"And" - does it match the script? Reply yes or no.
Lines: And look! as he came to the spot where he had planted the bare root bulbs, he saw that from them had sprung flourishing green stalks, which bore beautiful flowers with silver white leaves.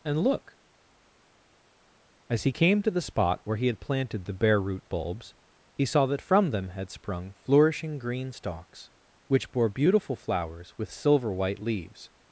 yes